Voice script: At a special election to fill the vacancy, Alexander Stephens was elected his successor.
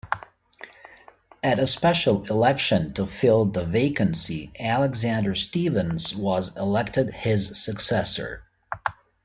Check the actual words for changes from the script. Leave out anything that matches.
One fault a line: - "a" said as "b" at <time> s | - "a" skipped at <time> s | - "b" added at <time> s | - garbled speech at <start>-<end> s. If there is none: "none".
none